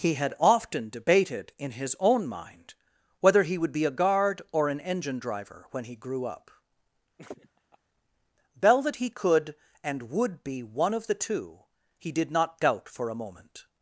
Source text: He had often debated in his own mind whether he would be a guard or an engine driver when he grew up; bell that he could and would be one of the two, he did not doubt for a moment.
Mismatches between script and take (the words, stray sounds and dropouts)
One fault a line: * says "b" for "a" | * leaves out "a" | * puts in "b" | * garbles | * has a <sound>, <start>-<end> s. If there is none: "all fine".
* has a laugh, 7.2-7.8 s